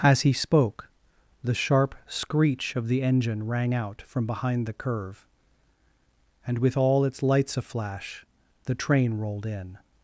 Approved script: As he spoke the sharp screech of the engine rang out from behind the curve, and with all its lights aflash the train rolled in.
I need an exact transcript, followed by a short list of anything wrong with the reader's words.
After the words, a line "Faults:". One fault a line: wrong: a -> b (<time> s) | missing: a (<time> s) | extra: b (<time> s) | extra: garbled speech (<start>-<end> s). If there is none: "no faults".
As he spoke the sharp screech of the engine rang out from behind the curve, and with all its lights aflash the train rolled in.
Faults:
no faults